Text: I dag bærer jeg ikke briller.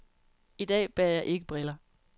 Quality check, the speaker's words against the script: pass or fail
pass